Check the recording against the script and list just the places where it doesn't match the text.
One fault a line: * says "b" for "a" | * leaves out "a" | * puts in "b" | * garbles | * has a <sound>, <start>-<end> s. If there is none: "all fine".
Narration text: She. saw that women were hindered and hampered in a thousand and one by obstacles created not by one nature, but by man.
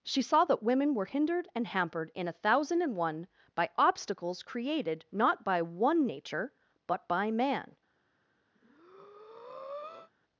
* has a breath, 8.6-10.1 s